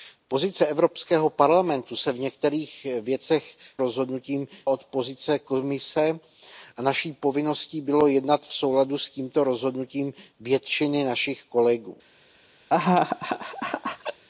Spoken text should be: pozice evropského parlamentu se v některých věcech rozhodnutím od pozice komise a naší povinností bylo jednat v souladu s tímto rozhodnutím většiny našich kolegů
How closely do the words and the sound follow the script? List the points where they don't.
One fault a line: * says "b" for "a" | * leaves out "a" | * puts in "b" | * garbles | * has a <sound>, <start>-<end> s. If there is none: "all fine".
* has a laugh, 12.7-14.2 s